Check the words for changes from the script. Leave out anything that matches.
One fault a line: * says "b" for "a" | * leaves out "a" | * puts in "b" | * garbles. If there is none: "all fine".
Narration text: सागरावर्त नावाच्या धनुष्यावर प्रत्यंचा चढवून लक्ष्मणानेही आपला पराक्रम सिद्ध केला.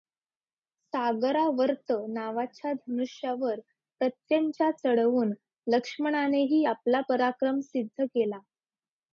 all fine